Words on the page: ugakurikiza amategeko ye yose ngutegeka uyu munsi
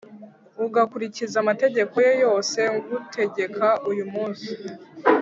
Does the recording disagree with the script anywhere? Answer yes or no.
no